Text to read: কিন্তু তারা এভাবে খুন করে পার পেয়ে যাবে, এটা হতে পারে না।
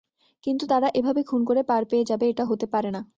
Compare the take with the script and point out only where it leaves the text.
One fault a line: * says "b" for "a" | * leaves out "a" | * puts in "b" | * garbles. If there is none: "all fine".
all fine